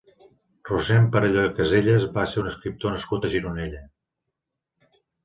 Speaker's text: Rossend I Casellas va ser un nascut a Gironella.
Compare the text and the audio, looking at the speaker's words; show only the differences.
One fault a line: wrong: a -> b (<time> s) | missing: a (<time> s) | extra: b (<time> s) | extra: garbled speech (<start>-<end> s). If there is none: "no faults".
extra: Perelló (1.1 s)
extra: escriptor (2.5 s)